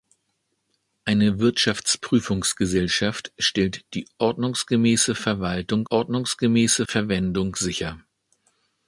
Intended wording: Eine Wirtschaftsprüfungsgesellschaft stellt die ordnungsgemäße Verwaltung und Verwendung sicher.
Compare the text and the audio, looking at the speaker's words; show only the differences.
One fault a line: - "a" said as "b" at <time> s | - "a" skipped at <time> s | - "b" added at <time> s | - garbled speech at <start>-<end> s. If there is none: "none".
- "und" said as "ordnungsgemäße" at 5.9 s